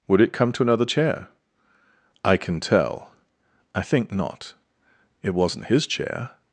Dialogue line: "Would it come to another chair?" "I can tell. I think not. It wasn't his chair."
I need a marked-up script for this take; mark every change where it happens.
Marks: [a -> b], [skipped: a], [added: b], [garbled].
"Would it come to another chair?" "I can tell. I think not. It wasn't his chair."